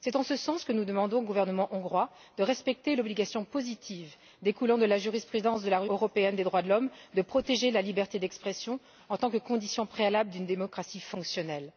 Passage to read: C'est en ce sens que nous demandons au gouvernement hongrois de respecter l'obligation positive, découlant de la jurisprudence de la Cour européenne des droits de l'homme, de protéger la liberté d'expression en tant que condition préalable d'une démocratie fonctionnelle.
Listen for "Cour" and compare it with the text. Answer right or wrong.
wrong